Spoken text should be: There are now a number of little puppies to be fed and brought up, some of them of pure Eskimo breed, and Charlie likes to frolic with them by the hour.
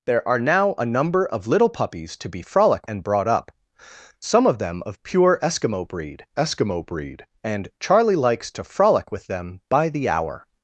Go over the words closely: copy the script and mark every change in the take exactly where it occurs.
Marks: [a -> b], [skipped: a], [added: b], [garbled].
There are now a number of little puppies to be [fed -> frolic] and brought up, some of them of pure Eskimo breed, [added: Eskimo breed] and Charlie likes to frolic with them by the hour.